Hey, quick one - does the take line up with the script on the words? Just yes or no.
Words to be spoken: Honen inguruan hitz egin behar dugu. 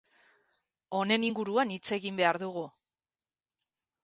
yes